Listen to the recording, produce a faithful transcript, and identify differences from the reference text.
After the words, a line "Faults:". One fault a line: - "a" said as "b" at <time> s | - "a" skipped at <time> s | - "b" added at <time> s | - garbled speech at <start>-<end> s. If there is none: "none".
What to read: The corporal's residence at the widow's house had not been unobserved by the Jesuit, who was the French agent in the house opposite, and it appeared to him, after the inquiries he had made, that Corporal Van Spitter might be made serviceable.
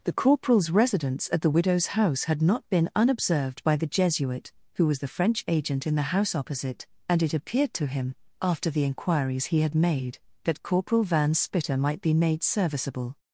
The corporal's residence at the widow's house had not been unobserved by the Jesuit, who was the French agent in the house opposite, and it appeared to him, after the inquiries he had made, that Corporal Van Spitter might be made serviceable.
Faults:
none